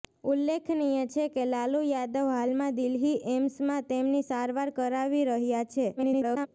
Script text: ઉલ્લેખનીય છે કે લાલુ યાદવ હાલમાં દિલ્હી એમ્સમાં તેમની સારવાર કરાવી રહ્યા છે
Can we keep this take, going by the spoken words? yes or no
no